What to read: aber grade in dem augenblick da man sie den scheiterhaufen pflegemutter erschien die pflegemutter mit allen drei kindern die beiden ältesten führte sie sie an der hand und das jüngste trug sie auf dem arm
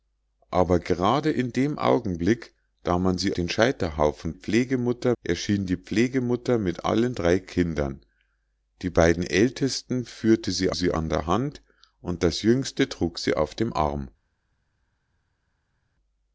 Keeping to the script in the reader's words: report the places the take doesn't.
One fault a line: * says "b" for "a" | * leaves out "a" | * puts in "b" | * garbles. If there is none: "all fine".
all fine